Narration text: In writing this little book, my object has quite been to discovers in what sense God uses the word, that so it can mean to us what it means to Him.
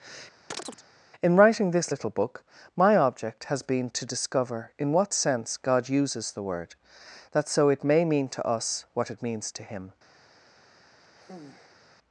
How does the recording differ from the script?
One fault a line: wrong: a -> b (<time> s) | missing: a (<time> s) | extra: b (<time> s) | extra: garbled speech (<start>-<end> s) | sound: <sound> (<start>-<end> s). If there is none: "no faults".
sound: chirp (0.5-0.8 s)
missing: quite (3.6 s)
wrong: discovers -> discover (4.1 s)
wrong: can -> may (7.8 s)
sound: sigh (11.0-11.8 s)